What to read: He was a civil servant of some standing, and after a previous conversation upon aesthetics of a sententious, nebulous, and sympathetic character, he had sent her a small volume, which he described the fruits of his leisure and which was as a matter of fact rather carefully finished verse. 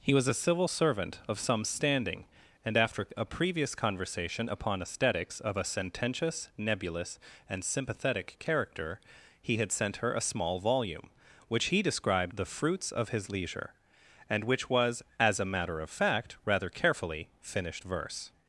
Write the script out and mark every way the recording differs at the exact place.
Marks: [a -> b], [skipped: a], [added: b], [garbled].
He was a civil servant of some standing, and after a previous conversation upon aesthetics of a sententious, nebulous, and sympathetic character, he had sent her a small volume, which he described the fruits of his leisure and which was as a matter of fact rather carefully finished verse.